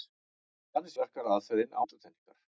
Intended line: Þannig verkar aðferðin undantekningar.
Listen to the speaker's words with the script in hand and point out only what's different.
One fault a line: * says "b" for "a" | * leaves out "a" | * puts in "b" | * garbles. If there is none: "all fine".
all fine